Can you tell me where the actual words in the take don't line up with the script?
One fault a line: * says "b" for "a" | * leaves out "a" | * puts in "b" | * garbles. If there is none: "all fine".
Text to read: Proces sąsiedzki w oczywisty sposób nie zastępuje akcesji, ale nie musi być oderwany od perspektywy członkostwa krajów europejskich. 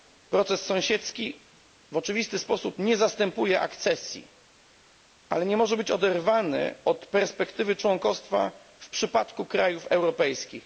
* says "może" for "musi"
* puts in "w przypadku"